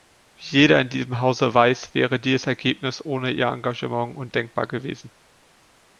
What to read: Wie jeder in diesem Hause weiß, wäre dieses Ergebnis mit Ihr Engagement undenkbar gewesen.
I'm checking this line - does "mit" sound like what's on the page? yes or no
no